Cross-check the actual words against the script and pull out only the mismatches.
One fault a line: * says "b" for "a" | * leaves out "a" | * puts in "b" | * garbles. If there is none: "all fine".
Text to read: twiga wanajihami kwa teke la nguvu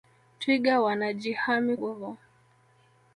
* leaves out "kwa teke la"